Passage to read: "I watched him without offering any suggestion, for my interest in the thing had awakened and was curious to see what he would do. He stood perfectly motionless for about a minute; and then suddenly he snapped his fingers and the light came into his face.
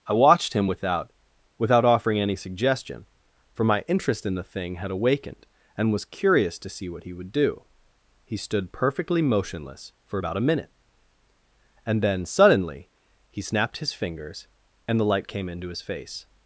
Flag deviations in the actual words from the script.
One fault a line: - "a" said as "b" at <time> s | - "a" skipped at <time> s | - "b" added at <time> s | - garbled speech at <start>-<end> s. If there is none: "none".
- "without" added at 1.6 s